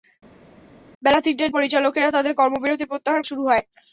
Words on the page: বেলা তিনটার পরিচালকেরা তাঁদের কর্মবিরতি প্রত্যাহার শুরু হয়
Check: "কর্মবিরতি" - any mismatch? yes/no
no